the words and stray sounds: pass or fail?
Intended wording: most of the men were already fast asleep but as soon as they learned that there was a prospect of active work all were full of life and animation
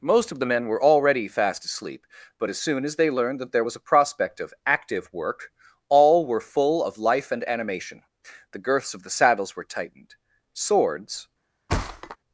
fail